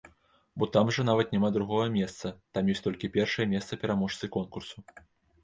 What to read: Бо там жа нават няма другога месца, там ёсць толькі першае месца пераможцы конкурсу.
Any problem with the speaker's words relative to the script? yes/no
no